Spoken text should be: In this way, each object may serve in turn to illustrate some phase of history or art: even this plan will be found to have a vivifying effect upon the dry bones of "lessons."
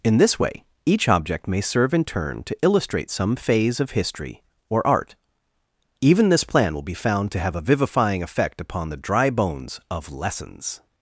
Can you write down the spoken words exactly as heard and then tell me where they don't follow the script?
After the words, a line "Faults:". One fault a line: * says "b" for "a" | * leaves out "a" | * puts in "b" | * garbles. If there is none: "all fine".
In this way, each object may serve in turn to illustrate some phase of history or art: even this plan will be found to have a vivifying effect upon the dry bones of "lessons."
Faults:
all fine